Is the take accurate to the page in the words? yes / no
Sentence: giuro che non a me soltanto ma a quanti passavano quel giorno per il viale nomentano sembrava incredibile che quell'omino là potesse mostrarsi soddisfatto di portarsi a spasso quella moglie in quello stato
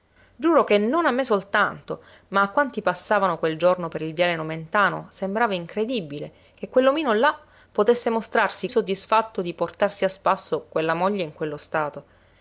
yes